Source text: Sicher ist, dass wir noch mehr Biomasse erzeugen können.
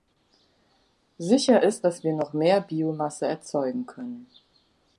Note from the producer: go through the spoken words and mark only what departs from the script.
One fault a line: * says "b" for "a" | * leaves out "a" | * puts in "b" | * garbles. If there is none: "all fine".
all fine